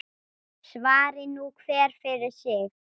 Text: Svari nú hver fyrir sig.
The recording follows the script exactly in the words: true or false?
true